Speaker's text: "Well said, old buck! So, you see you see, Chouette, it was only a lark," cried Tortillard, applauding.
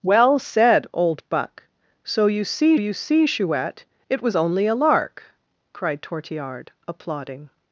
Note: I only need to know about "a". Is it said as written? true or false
true